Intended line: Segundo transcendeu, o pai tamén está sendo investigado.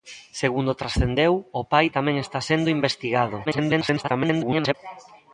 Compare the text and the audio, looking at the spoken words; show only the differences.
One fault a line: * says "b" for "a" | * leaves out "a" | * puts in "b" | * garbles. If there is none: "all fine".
* garbles